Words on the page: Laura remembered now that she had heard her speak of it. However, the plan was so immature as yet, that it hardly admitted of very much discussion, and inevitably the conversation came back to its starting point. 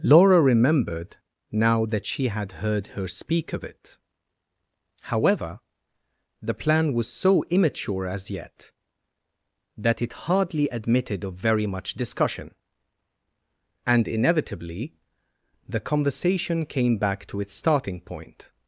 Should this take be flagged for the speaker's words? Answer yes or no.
no